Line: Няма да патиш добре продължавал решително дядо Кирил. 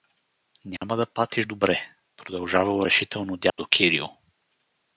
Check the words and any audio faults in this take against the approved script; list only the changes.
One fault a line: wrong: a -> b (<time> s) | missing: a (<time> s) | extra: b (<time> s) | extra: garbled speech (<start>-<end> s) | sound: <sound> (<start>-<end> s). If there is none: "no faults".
sound: dropout (0.8-0.8 s)
sound: dropout (3.5-3.6 s)